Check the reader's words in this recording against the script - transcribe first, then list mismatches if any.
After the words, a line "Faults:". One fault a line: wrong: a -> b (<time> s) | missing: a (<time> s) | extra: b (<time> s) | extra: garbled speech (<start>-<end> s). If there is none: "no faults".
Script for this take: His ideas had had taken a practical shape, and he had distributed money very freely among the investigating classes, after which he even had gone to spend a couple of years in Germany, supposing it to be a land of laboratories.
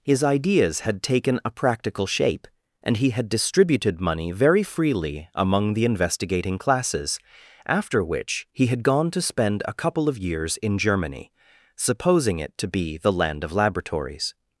His ideas had taken a practical shape, and he had distributed money very freely among the investigating classes, after which he had gone to spend a couple of years in Germany, supposing it to be the land of laboratories.
Faults:
missing: had (1.0 s)
missing: even (8.7 s)
wrong: a -> the (13.0 s)